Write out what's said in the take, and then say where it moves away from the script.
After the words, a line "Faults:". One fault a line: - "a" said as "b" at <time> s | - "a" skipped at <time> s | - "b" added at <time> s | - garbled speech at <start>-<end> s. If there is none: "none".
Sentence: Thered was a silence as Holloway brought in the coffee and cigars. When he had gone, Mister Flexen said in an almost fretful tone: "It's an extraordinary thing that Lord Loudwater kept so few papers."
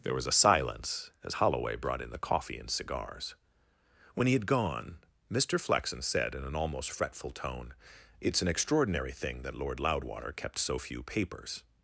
There was a silence as Holloway brought in the coffee and cigars. When he had gone, Mister Flexen said in an almost fretful tone: "It's an extraordinary thing that Lord Loudwater kept so few papers."
Faults:
- "Thered" said as "There" at 0.0 s